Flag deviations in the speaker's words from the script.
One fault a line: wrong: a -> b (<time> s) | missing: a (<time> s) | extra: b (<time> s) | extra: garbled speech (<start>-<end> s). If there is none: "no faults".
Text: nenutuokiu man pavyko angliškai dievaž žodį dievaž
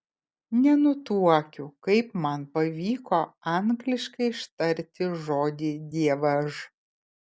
extra: kaip (1.9 s)
wrong: dievaž -> ištarti (4.4 s)